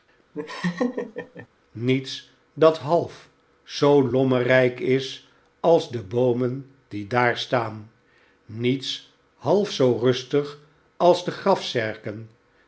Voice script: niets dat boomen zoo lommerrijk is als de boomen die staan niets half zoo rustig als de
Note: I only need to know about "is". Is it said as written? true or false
true